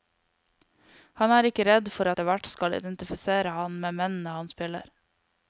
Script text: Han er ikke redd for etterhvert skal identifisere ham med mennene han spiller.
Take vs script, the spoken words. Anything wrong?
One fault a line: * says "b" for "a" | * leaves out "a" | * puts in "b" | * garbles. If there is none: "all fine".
all fine